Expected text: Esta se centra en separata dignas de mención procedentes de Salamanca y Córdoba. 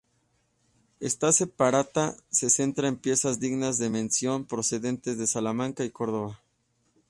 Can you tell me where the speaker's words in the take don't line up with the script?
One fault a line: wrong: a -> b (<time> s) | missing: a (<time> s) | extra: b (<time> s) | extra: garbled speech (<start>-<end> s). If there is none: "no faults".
extra: separata (1.3 s)
wrong: separata -> piezas (3.0 s)